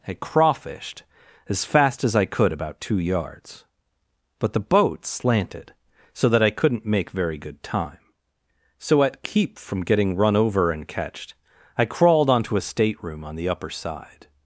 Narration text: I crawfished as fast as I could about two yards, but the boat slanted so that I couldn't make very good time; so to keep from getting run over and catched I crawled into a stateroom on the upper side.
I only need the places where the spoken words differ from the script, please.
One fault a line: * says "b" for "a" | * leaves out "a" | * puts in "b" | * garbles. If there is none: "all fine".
* says "at" for "to"
* says "onto" for "into"